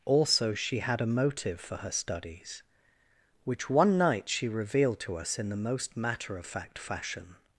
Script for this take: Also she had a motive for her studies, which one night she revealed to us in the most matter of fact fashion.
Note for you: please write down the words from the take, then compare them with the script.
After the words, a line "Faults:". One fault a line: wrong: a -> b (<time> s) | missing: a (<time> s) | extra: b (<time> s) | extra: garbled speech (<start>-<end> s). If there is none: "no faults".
Also she had a motive for her studies, which one night she revealed to us in the most matter of fact fashion.
Faults:
no faults